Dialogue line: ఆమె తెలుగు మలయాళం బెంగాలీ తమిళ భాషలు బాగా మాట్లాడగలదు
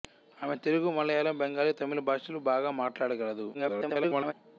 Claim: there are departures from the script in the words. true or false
true